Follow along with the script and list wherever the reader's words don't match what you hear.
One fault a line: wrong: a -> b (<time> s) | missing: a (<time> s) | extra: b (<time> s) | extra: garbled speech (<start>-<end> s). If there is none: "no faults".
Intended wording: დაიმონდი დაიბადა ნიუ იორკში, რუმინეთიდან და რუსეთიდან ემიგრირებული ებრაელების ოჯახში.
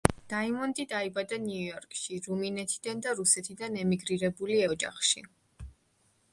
missing: ებრაელების (4.6 s)